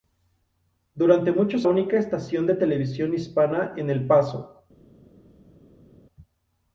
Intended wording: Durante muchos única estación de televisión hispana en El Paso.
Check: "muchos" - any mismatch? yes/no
no